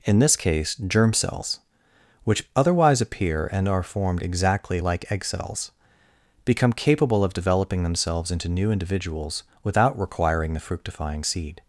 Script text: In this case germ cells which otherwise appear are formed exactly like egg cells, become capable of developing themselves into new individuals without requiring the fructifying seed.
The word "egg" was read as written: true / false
true